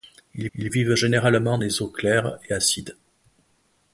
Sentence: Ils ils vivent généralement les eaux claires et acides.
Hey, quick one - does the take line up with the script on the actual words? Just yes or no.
yes